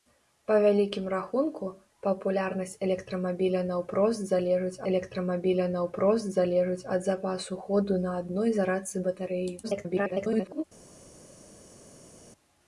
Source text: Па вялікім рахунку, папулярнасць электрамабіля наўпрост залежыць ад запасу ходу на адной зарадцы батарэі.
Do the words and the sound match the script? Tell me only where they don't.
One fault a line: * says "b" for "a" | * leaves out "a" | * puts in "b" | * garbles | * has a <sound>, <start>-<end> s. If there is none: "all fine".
* puts in "электрамабіля наўпрост залежыць"
* garbles